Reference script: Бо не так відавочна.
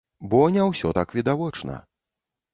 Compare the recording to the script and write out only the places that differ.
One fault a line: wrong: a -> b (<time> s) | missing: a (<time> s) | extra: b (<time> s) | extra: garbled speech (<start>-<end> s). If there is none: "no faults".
extra: ўсё (0.7 s)